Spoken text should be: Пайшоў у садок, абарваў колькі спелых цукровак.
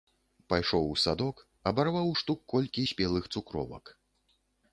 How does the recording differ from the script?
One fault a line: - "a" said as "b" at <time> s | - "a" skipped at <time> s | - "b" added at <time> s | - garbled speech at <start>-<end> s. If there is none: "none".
- "штук" added at 2.2 s